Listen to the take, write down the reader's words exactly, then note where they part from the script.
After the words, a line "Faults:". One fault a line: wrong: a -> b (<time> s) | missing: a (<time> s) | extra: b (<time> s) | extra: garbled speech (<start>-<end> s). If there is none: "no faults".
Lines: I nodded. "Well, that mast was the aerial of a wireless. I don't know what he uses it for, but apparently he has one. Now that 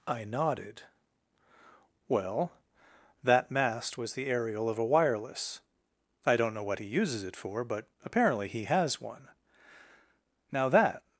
I nodded. "Well, that mast was the aerial of a wireless. I don't know what he uses it for, but apparently he has one. Now that
Faults:
no faults